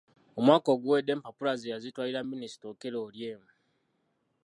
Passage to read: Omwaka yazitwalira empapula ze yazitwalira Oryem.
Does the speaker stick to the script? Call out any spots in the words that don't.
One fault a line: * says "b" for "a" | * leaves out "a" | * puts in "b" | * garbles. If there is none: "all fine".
* says "oguwedde" for "yazitwalira"
* puts in "Minisita Okello"